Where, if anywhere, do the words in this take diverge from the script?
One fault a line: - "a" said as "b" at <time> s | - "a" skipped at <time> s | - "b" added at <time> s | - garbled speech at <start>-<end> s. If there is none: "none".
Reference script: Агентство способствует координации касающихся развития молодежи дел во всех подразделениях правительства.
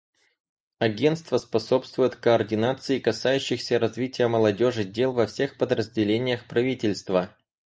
none